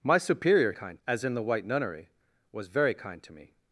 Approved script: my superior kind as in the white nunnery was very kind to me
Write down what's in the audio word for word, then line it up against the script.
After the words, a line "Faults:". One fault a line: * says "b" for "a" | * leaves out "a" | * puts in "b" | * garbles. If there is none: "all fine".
my superior kind as in the white nunnery was very kind to me
Faults:
all fine